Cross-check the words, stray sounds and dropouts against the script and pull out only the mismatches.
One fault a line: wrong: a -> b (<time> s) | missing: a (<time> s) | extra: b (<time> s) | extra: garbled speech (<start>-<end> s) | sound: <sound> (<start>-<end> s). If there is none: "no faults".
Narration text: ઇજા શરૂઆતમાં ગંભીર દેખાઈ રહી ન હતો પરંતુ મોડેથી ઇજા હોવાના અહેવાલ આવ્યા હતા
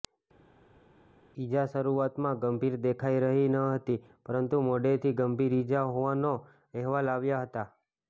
wrong: હતો -> હતી (3.6 s)
extra: ગંભીર (5.2 s)